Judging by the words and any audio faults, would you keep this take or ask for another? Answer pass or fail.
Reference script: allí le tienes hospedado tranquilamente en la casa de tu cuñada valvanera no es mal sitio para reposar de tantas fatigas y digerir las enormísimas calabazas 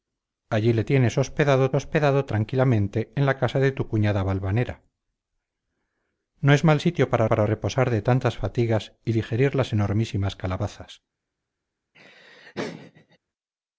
fail